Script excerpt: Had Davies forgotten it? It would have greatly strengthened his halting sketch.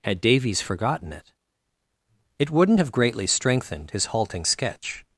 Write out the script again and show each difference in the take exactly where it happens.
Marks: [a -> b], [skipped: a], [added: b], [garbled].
Had Davies forgotten it? It [would -> wouldn't] have greatly strengthened his halting sketch.